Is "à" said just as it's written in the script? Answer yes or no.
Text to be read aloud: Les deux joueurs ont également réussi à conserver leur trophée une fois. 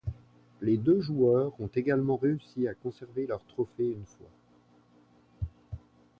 yes